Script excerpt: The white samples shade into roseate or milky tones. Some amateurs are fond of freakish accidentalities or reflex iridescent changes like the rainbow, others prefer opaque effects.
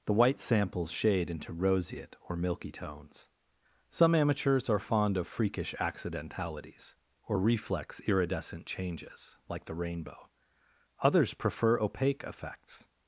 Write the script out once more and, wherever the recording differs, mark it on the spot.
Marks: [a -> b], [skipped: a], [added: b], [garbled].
The white samples shade into roseate or milky tones. Some amateurs are fond of freakish accidentalities or reflex iridescent changes like the rainbow, others prefer opaque effects.